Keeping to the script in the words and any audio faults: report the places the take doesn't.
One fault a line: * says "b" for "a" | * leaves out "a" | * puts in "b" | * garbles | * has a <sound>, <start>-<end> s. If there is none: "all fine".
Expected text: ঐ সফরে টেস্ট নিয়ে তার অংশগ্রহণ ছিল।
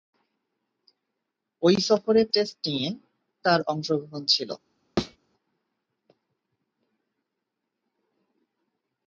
* has a thud, 5.0-5.2 s